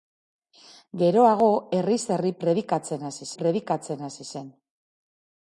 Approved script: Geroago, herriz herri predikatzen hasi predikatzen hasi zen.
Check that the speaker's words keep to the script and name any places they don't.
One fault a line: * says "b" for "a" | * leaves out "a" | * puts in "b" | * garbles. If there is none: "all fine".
all fine